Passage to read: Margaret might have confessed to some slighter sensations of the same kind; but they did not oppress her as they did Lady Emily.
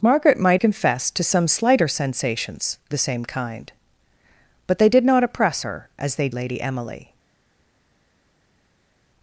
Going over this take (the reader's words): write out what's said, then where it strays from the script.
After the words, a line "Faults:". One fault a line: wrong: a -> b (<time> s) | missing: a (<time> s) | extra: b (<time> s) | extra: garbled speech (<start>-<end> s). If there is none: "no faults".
Margaret might confessed to some slighter sensations the same kind; but they did not oppress her as they Lady Emily.
Faults:
missing: have (0.6 s)
missing: of (2.8 s)
missing: did (6.3 s)